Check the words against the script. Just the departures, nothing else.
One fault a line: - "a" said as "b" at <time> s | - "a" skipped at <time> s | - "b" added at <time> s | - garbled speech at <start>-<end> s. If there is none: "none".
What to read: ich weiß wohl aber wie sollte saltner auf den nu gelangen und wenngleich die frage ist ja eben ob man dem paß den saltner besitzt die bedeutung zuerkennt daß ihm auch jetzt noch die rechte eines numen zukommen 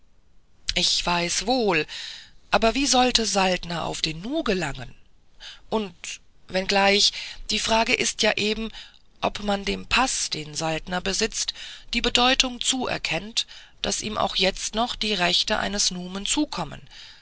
none